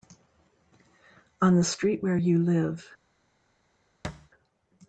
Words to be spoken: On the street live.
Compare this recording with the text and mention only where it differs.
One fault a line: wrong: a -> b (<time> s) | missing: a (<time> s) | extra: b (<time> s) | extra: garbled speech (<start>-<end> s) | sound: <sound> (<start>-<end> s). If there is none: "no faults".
extra: where you (2.0 s)
sound: thud (4.0-4.3 s)